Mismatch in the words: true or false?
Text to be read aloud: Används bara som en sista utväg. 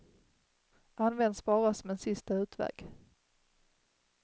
false